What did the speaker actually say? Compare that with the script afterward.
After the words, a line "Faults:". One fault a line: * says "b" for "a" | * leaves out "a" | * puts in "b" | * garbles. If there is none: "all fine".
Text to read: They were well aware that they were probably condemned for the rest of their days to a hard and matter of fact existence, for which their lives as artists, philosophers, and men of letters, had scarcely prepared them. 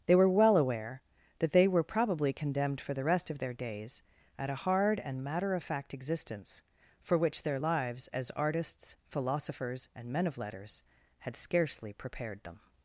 They were well aware that they were probably condemned for the rest of their days at a hard and matter of fact existence, for which their lives as artists, philosophers, and men of letters, had scarcely prepared them.
Faults:
* says "at" for "to"